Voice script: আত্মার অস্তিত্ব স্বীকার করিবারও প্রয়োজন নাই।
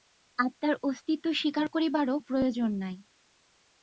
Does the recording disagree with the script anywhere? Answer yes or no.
no